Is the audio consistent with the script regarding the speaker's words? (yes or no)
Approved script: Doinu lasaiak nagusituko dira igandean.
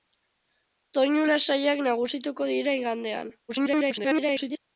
no